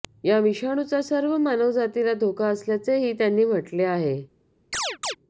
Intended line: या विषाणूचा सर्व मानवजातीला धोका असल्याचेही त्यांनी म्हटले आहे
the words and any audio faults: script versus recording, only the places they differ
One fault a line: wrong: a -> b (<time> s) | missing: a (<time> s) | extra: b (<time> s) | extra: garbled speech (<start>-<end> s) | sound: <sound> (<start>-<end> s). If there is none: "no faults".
sound: chirp (4.7-5.2 s)